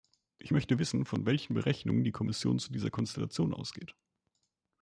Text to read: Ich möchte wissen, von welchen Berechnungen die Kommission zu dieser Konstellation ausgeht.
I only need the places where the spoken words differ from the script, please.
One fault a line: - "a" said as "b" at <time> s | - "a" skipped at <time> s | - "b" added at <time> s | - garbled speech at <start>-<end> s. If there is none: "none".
none